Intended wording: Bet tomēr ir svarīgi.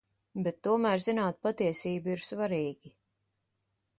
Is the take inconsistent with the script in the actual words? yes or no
yes